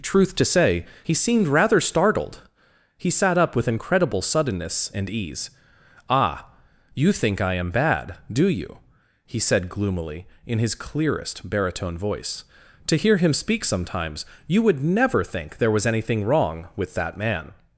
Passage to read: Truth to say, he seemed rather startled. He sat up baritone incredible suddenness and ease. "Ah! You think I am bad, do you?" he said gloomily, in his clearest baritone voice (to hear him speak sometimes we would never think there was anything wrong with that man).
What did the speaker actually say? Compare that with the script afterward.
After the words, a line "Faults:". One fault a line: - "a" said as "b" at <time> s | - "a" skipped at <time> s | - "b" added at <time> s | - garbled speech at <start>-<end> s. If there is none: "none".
Truth to say, he seemed rather startled. He sat up with incredible suddenness and ease. "Ah! You think I am bad, do you?" he said gloomily, in his clearest baritone voice (to hear him speak sometimes you would never think there was anything wrong with that man).
Faults:
- "baritone" said as "with" at 3.5 s
- "we" said as "you" at 14.5 s